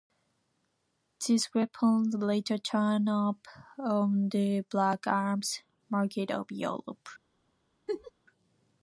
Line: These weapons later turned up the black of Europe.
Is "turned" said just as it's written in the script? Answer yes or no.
yes